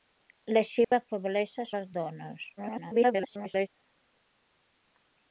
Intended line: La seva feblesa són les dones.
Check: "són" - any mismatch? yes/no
yes